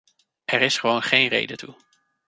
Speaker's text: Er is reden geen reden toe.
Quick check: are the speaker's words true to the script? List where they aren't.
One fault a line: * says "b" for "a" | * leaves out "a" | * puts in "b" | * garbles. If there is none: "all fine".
* says "gewoon" for "reden"